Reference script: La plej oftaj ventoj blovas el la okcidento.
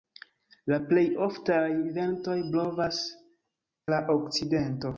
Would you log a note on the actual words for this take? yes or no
yes